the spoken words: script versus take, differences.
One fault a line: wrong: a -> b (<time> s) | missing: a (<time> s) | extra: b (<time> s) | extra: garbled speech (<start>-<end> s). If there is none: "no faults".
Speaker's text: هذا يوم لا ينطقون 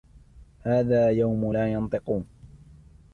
no faults